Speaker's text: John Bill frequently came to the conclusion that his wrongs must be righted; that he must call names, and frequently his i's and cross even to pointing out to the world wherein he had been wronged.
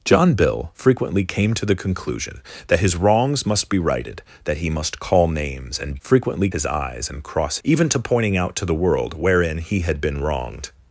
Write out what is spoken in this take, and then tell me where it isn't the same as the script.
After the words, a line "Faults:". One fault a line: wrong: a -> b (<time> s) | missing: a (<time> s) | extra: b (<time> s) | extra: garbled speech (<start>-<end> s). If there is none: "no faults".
John Bill frequently came to the conclusion that his wrongs must be righted; that he must call names, and frequently his i's and cross even to pointing out to the world wherein he had been wronged.
Faults:
no faults